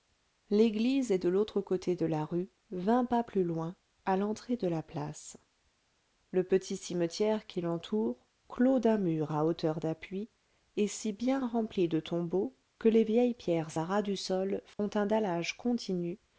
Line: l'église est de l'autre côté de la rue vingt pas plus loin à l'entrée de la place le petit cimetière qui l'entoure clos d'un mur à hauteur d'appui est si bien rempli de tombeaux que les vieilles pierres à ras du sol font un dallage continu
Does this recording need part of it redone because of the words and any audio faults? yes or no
yes